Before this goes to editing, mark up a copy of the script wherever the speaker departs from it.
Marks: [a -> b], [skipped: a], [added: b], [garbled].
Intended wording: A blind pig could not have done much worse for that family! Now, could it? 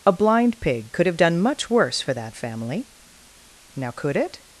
A blind pig could [skipped: not] have done much worse for that family! Now, could it?